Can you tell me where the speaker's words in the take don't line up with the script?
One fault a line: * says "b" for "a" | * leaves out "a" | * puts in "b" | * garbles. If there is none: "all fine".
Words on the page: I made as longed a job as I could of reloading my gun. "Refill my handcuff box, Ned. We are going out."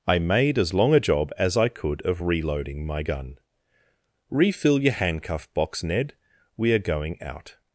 * says "long" for "longed"
* says "your" for "my"